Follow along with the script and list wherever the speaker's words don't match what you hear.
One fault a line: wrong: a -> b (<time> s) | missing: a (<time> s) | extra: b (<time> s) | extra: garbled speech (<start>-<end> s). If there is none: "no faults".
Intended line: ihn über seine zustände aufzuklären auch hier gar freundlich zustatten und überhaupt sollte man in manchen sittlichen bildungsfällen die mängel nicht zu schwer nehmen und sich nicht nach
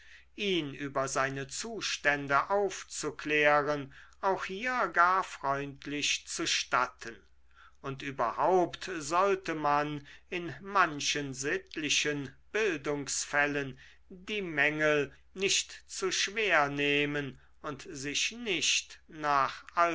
no faults